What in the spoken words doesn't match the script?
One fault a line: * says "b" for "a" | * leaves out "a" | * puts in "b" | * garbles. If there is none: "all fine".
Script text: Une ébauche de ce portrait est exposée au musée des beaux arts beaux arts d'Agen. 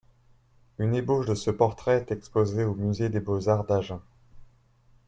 * leaves out "beaux arts"